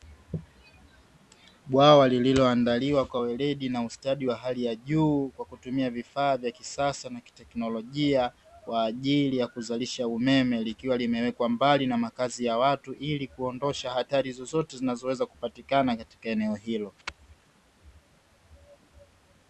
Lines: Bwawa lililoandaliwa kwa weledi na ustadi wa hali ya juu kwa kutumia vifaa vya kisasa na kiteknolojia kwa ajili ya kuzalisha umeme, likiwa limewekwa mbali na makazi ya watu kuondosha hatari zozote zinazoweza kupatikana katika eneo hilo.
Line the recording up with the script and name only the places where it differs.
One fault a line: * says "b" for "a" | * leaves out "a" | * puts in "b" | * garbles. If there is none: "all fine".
* puts in "ili"